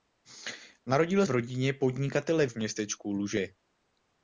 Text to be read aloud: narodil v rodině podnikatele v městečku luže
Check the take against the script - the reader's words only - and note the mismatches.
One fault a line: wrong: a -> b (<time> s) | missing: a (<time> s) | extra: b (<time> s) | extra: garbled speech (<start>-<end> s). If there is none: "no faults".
no faults